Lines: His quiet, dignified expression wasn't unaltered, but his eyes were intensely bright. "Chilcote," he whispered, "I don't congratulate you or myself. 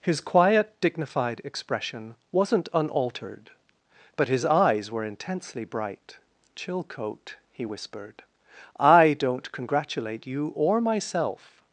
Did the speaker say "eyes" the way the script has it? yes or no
yes